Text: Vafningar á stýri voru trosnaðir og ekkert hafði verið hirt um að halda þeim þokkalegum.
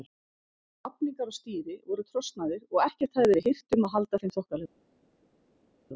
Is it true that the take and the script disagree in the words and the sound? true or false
false